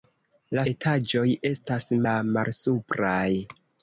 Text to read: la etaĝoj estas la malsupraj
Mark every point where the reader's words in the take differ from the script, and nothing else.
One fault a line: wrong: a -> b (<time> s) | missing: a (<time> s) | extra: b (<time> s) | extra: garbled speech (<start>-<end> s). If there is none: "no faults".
no faults